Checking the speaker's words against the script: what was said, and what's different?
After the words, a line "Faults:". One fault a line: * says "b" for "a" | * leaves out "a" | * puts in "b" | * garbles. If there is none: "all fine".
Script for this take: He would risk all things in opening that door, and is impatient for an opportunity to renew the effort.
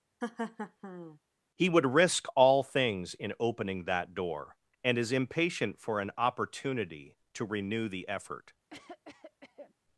He would risk all things in opening that door, and is impatient for an opportunity to renew the effort.
Faults:
all fine